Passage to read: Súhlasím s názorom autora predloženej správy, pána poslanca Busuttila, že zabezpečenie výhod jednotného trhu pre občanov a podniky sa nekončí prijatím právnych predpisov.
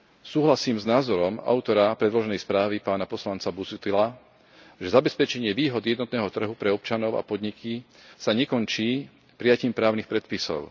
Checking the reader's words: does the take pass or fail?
pass